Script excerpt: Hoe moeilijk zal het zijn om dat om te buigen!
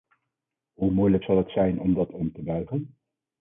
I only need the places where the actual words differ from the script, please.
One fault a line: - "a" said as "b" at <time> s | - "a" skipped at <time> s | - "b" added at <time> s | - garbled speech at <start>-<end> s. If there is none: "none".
none